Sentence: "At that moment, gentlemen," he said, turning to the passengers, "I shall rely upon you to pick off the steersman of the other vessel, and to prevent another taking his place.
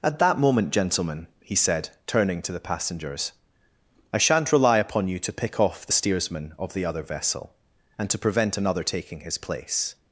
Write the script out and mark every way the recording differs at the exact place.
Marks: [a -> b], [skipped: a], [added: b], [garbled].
"At that moment, gentlemen," he said, turning to the passengers, "I [shall -> shan't] rely upon you to pick off the steersman of the other vessel, and to prevent another taking his place.